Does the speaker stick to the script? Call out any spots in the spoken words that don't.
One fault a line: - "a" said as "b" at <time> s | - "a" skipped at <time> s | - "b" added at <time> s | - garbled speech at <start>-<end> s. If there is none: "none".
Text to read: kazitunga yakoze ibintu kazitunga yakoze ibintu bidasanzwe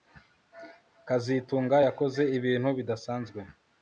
- "kazitunga yakoze ibintu" skipped at 2.7 s